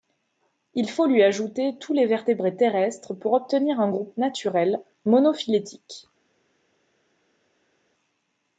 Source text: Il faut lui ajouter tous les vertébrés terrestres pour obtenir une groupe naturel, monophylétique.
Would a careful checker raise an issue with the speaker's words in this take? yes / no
yes